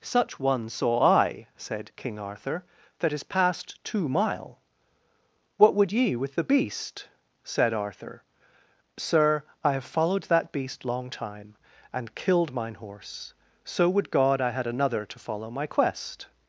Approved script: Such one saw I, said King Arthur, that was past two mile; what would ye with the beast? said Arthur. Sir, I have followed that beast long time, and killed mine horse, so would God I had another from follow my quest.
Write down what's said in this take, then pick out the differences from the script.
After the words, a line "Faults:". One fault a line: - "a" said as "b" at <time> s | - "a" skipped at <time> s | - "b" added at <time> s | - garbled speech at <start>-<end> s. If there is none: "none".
Such one saw I, said King Arthur, that is past two mile; what would ye with the beast? said Arthur. Sir, I have followed that beast long time, and killed mine horse, so would God I had another to follow my quest.
Faults:
- "was" said as "is" at 3.1 s
- "from" said as "to" at 15.0 s